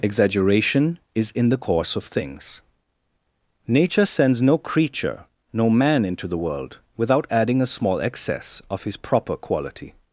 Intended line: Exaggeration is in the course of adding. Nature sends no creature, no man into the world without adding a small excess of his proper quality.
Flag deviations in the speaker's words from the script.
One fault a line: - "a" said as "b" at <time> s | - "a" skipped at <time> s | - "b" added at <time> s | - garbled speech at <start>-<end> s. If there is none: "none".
- "adding" said as "things" at 2.0 s